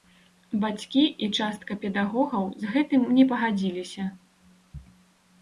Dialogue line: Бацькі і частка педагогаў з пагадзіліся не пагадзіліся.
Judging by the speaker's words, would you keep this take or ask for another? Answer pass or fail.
fail